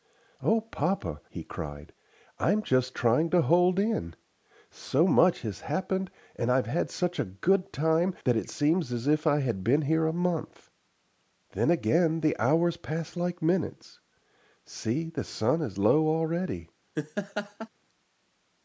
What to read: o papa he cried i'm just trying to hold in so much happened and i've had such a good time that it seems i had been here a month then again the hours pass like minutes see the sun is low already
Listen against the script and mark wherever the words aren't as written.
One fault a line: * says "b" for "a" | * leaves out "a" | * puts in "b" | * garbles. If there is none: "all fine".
* puts in "has"
* puts in "as if"